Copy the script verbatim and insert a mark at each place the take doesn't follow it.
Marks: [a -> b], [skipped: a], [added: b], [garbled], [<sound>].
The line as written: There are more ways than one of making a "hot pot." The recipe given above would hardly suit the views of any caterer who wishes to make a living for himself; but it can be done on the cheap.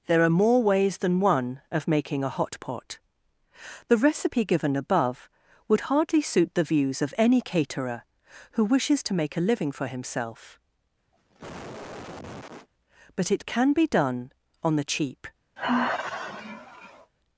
There are more ways than one of making a "hot pot." The recipe given above would hardly suit the views of any caterer who wishes to make a living for himself; [cough] but it can be done on the cheap. [sigh]